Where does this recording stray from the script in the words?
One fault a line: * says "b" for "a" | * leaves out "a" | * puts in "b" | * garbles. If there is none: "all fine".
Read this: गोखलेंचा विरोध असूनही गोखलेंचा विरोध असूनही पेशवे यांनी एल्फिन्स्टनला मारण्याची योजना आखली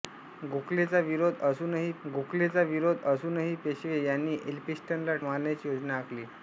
all fine